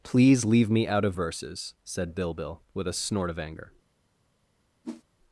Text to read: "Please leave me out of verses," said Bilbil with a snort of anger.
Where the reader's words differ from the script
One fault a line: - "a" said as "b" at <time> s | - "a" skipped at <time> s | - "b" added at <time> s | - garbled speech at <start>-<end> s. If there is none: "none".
none